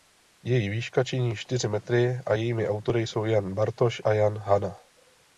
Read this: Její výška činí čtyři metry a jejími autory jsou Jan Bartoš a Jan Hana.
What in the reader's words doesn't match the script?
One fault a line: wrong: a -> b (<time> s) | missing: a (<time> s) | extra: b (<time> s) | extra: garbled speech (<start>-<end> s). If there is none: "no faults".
no faults